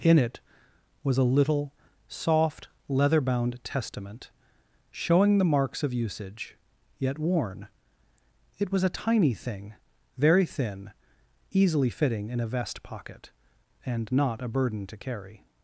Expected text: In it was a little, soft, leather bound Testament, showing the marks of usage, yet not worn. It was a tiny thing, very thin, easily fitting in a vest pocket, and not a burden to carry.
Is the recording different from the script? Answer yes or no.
yes